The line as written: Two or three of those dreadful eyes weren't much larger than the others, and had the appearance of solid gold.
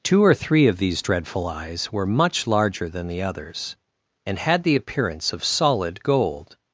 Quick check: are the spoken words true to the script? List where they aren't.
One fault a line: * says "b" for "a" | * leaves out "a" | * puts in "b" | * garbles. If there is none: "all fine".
* says "these" for "those"
* says "were" for "weren't"